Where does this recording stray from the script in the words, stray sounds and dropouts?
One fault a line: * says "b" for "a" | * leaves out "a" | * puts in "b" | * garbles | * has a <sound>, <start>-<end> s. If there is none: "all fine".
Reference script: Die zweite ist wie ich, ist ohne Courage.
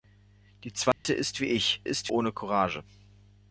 * has a dropout, 0.9-1.0 s